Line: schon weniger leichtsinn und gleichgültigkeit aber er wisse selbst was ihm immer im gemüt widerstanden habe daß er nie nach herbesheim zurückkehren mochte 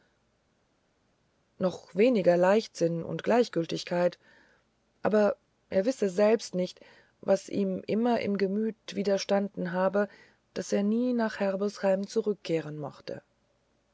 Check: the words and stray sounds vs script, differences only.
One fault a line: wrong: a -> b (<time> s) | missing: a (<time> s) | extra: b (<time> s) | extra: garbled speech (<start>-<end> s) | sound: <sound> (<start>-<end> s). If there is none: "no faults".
wrong: schon -> noch (1.6 s)
extra: nicht (6.5 s)